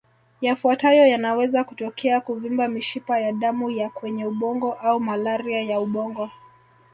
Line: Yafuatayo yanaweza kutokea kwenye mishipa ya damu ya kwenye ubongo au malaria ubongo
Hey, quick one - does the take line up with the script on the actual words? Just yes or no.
no